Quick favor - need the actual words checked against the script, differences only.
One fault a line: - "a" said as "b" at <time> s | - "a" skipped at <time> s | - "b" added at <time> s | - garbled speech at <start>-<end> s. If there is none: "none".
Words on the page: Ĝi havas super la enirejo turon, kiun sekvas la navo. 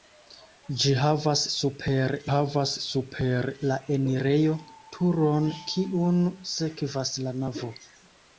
- "havas super" added at 2.3 s